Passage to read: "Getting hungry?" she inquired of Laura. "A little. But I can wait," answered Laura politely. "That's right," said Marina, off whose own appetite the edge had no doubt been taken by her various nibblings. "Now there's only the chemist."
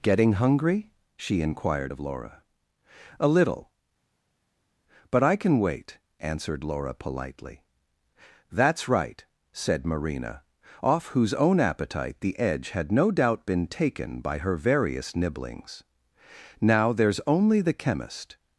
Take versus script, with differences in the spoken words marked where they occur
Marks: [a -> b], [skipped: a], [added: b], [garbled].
"Getting hungry?" she inquired of Laura. "A little. But I can wait," answered Laura politely. "That's right," said Marina, off whose own appetite the edge had no doubt been taken by her various nibblings. "Now there's only the chemist."